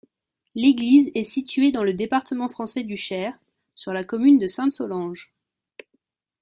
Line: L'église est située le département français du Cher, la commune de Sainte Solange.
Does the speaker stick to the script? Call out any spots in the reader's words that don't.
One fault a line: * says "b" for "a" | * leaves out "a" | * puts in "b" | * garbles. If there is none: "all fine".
* puts in "dans"
* puts in "sur"